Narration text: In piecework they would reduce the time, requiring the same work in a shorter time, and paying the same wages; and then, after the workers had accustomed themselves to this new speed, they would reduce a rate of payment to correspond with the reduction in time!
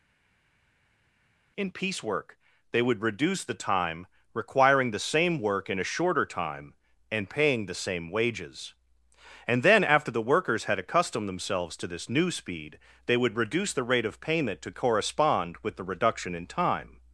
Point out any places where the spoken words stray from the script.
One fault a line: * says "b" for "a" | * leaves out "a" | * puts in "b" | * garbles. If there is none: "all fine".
* says "the" for "a"